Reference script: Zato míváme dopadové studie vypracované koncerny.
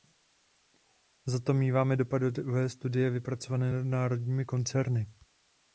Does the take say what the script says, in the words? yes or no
no